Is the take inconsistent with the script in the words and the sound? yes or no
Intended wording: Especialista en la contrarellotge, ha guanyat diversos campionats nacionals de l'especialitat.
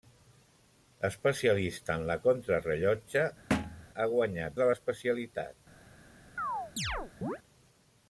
yes